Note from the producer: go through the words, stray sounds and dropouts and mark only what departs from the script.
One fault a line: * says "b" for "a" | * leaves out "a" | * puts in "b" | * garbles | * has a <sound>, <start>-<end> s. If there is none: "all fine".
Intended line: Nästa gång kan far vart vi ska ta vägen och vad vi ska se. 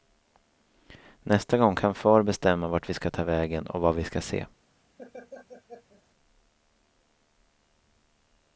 * puts in "bestämma"
* has a laugh, 5.0-6.0 s